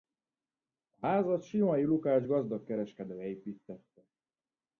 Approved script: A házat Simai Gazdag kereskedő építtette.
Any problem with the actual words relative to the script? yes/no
yes